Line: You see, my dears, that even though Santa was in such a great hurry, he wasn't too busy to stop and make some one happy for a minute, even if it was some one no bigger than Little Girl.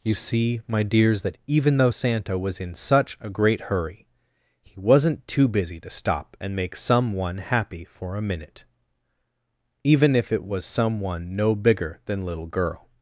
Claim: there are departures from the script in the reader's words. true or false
false